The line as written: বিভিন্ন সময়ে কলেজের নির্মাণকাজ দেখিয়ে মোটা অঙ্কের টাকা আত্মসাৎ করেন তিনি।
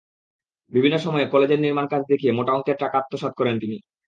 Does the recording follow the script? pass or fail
pass